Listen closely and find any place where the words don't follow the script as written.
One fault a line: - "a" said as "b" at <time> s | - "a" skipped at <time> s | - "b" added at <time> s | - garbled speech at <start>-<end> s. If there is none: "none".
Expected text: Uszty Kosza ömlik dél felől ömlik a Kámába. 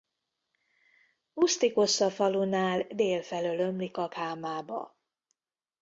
- "ömlik" said as "falunál" at 2.1 s